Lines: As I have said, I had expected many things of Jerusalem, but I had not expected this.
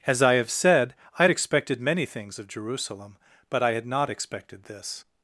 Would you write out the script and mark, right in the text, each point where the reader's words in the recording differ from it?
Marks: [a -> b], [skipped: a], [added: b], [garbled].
As I have said, I had expected many things of Jerusalem, but I had not expected this.